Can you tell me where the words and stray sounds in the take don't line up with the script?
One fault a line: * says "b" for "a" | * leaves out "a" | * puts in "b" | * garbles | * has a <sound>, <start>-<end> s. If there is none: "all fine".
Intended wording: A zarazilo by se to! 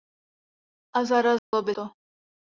* has a dropout, 1.4-1.5 s
* leaves out "se"